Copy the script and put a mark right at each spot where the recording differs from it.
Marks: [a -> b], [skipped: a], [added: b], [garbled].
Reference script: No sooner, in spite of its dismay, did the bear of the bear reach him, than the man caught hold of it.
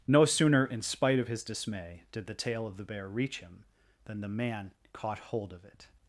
No sooner, in spite of [its -> his] dismay, did the [bear -> tail] of the bear reach him, than the man caught hold of it.